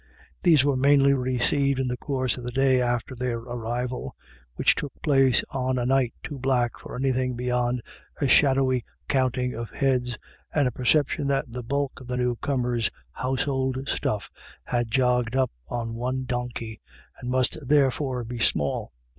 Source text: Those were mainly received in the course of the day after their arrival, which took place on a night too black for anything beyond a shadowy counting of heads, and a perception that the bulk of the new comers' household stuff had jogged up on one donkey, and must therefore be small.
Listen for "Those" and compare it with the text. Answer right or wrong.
wrong